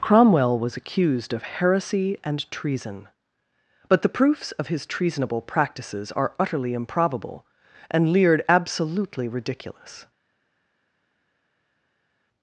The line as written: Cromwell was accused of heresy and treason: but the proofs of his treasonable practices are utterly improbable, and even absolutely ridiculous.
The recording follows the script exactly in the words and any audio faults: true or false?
false